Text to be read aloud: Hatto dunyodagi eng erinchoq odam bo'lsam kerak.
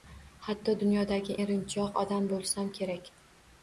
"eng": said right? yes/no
no